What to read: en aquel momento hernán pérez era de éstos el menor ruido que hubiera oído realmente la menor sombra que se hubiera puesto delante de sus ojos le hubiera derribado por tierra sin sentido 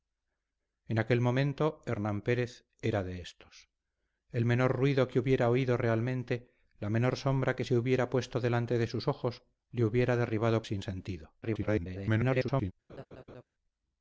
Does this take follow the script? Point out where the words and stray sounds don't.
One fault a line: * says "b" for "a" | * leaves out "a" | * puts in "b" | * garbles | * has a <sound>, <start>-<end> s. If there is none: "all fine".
* leaves out "por tierra"
* garbles
* has a laugh, 12.9-13.4 s